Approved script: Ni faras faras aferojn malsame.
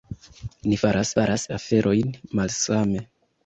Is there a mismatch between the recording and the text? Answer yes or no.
no